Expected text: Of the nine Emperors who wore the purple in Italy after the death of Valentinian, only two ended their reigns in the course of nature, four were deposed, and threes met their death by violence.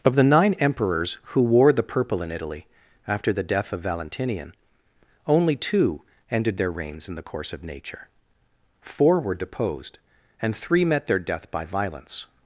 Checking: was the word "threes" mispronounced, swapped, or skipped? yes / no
yes